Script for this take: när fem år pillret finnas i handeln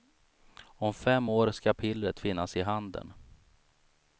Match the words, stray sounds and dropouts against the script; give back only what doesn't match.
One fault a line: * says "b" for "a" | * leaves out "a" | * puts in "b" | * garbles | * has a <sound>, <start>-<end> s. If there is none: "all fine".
* says "om" for "när"
* puts in "ska"